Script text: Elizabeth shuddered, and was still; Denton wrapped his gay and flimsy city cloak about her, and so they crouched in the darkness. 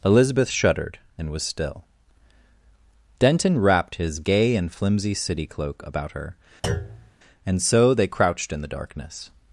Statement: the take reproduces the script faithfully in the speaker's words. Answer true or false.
true